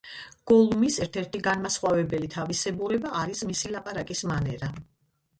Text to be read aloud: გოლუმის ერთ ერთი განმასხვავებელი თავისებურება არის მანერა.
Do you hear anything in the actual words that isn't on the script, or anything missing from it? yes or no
yes